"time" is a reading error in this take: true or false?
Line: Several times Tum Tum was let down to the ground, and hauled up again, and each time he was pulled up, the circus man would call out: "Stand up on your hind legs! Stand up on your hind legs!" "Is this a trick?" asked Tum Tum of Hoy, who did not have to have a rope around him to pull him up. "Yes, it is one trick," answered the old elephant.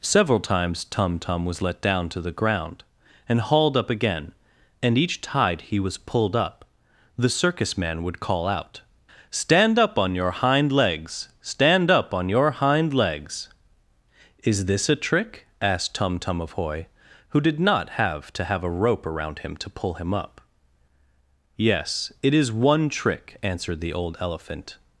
true